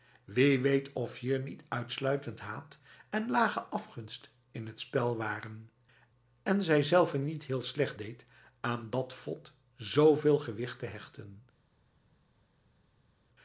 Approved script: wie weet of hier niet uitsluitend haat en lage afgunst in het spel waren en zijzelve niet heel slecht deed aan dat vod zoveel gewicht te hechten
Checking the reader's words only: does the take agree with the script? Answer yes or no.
yes